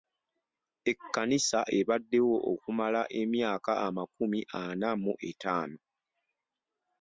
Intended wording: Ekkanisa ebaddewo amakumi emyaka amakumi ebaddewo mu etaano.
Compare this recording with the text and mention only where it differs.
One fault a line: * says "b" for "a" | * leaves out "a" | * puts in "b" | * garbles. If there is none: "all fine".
* says "okumala" for "amakumi"
* says "ana" for "ebaddewo"